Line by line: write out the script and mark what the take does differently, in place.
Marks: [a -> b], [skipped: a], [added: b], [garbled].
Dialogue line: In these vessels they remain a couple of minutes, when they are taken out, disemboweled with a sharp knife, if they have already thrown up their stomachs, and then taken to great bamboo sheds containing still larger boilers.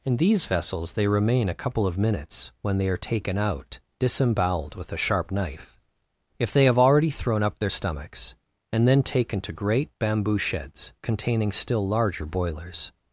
In these vessels they remain a couple of minutes, when they are taken out, disemboweled with a sharp knife, if they have already thrown up their stomachs, and then taken to great bamboo sheds containing still larger boilers.